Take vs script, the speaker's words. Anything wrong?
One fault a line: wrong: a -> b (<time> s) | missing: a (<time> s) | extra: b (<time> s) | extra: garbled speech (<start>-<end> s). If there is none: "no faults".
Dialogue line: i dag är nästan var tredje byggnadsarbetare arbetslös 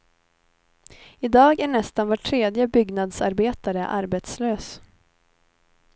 no faults